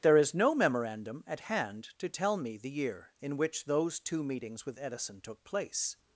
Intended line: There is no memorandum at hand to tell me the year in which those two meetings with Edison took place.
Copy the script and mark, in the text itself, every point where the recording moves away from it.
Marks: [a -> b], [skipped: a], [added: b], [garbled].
There is no memorandum at hand to tell me the year in which those two meetings with Edison took place.